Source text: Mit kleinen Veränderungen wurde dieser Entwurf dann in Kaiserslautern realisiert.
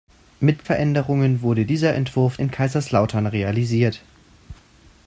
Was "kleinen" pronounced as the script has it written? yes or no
no